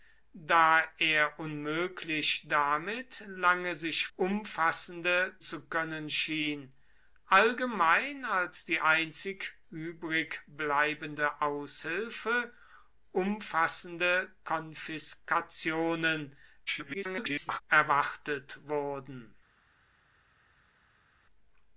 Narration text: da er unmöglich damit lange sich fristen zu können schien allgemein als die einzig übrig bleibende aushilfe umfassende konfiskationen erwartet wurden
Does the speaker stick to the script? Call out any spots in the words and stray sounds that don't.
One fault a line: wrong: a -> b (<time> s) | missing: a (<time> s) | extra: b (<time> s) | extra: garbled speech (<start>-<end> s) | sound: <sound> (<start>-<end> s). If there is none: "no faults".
wrong: fristen -> umfassende (4.2 s)
extra: garbled speech (16.7-17.6 s)